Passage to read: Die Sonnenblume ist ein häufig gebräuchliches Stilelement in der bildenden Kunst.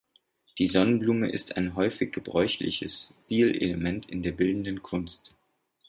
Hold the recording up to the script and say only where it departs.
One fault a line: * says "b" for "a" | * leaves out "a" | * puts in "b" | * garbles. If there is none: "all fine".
all fine